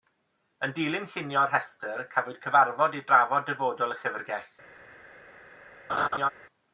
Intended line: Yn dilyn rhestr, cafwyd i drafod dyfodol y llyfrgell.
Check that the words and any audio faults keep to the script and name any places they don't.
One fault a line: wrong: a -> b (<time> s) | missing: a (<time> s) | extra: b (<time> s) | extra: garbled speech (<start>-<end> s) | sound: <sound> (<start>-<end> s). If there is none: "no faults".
extra: llunio'r (1.2 s)
extra: cyfarfod (2.5 s)
sound: laugh (5.9-6.3 s)